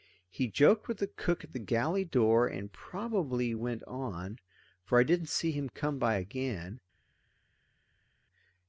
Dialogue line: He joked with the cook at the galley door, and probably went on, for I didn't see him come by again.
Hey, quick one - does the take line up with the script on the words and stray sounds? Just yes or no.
yes